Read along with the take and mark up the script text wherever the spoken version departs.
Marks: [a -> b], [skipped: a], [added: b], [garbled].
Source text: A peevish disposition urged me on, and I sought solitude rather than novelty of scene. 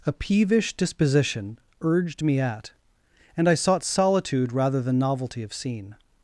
A peevish disposition urged me [on, -> at] and I sought solitude rather than novelty of scene.